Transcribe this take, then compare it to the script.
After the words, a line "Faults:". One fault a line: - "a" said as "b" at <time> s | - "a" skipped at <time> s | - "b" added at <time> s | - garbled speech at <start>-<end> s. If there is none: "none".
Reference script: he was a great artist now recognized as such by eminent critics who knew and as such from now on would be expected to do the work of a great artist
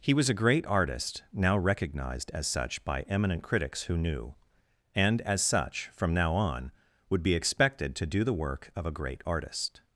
he was a great artist now recognized as such by eminent critics who knew and as such from now on would be expected to do the work of a great artist
Faults:
none